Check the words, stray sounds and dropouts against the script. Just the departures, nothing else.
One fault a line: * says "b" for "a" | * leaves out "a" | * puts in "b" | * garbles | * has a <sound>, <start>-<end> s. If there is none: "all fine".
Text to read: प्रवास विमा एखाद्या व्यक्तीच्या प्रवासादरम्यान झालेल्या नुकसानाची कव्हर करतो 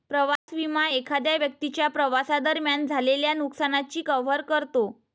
* has a dropout, 0.4-0.5 s